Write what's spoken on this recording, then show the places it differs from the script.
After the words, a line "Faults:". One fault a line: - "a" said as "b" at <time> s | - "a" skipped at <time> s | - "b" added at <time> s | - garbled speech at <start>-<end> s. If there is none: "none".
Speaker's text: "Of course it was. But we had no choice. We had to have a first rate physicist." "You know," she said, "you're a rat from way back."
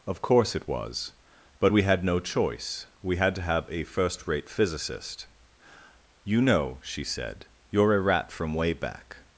"Of course it was. But we had no choice. We had to have a first rate physicist." "You know," she said, "you're a rat from way back."
Faults:
none